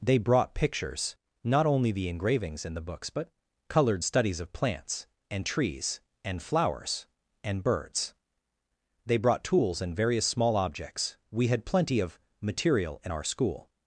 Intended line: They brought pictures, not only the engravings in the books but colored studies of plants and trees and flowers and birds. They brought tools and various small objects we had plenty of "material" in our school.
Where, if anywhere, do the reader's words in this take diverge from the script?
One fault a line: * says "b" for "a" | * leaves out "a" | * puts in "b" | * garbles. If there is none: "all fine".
all fine